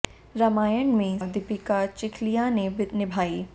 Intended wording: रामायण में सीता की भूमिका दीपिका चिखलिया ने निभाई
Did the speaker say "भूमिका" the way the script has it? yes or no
no